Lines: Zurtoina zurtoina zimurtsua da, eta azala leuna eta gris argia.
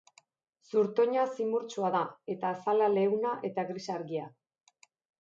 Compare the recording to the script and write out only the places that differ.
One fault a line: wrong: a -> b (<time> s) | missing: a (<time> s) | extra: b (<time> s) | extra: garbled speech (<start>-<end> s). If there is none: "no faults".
missing: zurtoina (1.2 s)